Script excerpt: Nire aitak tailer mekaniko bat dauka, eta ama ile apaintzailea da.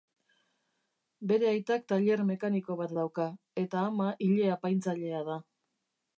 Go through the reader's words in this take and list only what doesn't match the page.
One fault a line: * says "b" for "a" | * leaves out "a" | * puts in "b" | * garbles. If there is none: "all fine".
* says "Bere" for "Nire"